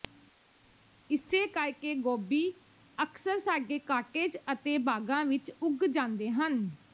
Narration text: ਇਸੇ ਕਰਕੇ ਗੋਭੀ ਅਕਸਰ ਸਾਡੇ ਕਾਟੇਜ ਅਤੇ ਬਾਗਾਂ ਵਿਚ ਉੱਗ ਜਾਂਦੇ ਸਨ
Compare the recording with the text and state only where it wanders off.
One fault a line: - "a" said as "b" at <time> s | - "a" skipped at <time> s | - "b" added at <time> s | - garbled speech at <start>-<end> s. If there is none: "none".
- "ਸਨ" said as "ਹਨ" at 6.3 s